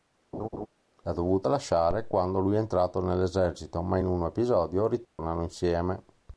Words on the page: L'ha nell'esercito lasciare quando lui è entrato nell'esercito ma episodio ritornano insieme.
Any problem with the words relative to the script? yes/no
yes